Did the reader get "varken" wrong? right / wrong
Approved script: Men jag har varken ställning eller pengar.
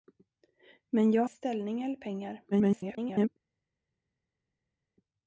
wrong